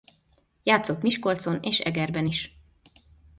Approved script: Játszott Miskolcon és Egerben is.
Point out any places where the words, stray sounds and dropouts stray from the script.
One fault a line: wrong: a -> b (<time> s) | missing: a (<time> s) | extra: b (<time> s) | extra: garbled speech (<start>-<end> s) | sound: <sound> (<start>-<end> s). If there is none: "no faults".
no faults